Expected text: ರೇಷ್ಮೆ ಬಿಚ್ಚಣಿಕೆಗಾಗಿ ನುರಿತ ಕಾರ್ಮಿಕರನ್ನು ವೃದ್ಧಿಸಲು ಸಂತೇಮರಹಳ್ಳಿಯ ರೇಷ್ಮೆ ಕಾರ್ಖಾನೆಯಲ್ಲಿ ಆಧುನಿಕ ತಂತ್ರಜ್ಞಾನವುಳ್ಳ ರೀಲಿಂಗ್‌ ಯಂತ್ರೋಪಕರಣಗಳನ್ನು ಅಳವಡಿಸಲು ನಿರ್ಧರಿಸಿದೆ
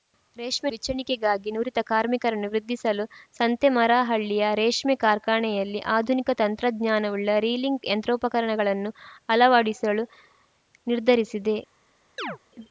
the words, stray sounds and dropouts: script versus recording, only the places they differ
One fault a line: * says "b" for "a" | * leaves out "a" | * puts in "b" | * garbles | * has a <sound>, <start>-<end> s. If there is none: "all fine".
* has a chirp, 12.2-12.4 s